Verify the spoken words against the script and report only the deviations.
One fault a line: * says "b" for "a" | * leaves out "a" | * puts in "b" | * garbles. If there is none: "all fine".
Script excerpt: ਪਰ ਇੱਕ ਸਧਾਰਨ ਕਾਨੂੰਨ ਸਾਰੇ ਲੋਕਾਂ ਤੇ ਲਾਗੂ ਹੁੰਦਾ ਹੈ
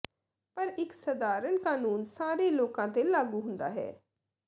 all fine